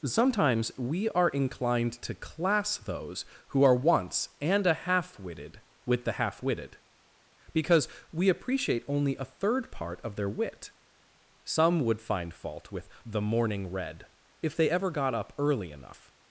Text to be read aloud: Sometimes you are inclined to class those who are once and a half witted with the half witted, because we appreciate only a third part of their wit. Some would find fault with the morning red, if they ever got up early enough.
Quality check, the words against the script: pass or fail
fail